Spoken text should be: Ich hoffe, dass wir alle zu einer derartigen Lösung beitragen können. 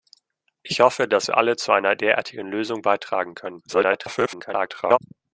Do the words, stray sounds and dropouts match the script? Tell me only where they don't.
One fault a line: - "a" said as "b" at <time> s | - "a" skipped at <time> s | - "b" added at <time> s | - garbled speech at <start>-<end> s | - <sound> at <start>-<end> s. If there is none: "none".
- garbled speech at 3.7-5.0 s